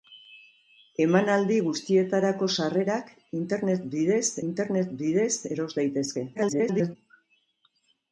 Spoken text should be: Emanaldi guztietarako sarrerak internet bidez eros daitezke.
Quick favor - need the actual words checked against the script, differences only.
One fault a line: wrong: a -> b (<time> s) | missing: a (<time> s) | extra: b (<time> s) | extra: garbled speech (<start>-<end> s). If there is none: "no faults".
extra: internet bidez (4.5 s)
extra: garbled speech (6.3-7.0 s)